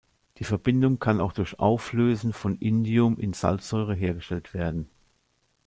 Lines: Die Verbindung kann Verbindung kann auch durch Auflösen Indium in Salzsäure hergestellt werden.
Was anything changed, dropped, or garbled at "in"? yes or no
no